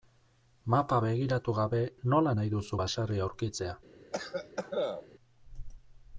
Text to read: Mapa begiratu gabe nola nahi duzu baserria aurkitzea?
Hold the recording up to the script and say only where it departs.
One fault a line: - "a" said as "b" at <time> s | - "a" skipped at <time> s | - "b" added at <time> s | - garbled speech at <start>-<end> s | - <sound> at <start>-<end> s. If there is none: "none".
- cough at 4.1-5.1 s